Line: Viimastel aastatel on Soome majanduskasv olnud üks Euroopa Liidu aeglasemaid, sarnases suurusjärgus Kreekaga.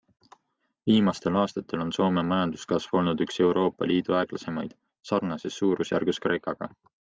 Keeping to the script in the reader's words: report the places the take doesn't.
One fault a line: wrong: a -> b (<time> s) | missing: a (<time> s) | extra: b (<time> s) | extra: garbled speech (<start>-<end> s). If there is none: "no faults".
no faults